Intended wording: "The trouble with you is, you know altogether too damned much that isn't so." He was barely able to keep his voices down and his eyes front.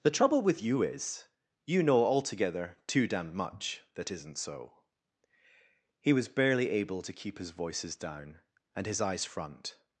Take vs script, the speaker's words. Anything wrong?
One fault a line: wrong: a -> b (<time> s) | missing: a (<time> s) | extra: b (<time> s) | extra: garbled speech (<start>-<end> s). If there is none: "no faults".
no faults